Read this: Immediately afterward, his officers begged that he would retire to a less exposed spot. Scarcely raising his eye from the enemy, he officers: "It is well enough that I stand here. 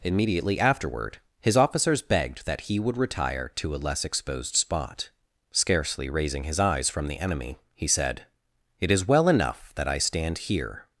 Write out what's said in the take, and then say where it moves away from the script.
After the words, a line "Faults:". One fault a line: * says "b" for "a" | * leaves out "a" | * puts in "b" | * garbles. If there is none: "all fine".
Immediately afterward, his officers begged that he would retire to a less exposed spot. Scarcely raising his eyes from the enemy, he said: "It is well enough that I stand here.
Faults:
* says "eyes" for "eye"
* says "said" for "officers"